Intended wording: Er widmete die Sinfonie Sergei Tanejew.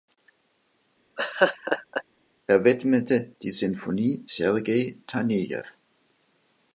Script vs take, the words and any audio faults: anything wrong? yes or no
yes